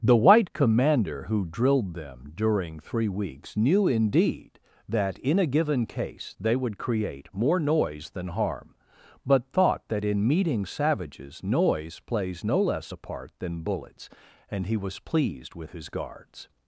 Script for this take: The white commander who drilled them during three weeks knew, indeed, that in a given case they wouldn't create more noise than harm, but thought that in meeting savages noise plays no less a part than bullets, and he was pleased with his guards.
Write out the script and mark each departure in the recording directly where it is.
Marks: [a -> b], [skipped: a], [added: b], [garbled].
The white commander who drilled them during three weeks knew, indeed, that in a given case they [wouldn't -> would] create more noise than harm, but thought that in meeting savages noise plays no less a part than bullets, and he was pleased with his guards.